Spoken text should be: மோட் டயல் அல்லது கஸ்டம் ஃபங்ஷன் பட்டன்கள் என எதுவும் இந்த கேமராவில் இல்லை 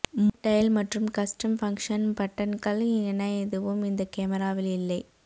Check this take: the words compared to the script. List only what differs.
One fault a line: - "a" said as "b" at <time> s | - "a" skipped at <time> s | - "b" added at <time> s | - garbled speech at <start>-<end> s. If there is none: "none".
- "அல்லது" said as "மற்றும்" at 0.8 s